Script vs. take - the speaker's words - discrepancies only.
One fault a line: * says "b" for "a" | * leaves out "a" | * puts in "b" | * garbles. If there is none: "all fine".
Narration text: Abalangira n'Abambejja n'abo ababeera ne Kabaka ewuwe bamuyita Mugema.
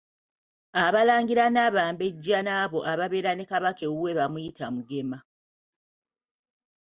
all fine